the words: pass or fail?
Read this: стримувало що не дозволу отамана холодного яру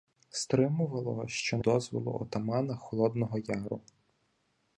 pass